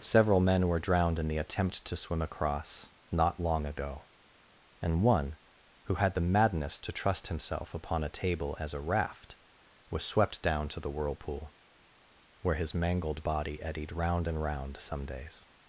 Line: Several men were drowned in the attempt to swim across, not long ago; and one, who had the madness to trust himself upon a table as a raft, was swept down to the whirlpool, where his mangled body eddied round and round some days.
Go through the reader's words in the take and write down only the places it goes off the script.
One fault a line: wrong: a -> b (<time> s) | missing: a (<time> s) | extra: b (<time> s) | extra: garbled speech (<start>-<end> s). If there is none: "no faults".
no faults